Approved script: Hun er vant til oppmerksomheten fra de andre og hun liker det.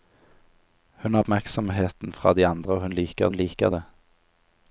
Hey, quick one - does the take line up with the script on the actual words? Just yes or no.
no